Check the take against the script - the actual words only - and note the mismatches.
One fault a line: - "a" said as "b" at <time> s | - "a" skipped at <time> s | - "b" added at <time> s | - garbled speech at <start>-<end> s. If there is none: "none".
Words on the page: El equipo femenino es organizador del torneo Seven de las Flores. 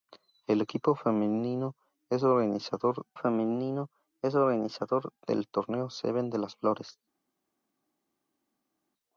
- "femenino es organizador" added at 3.1 s